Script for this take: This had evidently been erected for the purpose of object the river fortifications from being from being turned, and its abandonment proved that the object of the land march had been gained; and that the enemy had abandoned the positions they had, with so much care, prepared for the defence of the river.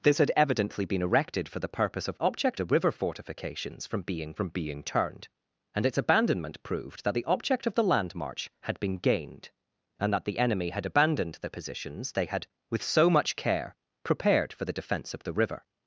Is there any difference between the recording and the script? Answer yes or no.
no